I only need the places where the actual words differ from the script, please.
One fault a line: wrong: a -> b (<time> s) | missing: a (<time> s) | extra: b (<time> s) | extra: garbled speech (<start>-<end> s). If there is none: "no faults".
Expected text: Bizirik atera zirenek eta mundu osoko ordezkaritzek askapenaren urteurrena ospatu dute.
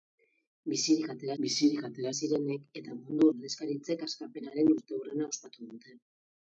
extra: bizirik atera (1.4 s)
missing: osoko (3.3 s)